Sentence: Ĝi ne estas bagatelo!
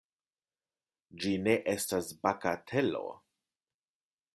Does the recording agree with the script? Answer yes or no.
yes